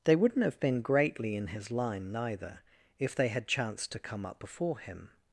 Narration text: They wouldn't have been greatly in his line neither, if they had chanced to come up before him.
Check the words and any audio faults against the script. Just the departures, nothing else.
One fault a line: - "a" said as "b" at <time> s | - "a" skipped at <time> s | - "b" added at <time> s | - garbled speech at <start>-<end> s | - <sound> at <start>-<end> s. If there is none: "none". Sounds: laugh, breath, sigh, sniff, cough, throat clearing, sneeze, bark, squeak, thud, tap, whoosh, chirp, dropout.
none